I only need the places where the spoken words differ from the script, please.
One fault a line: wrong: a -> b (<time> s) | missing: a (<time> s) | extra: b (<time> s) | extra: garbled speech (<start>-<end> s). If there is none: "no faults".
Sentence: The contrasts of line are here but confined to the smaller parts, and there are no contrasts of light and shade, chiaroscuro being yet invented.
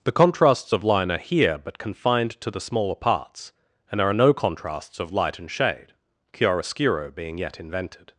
no faults